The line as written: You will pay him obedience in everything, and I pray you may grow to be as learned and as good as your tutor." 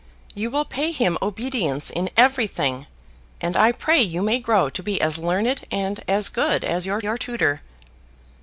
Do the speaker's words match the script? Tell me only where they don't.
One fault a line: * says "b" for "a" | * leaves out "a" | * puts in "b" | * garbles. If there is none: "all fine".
* puts in "your"